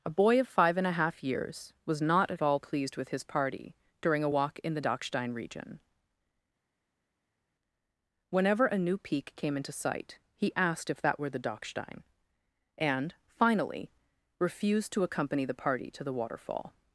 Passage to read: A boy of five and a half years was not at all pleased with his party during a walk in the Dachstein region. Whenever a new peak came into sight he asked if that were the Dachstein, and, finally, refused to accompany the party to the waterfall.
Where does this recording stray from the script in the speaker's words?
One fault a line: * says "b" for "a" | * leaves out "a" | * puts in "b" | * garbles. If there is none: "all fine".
all fine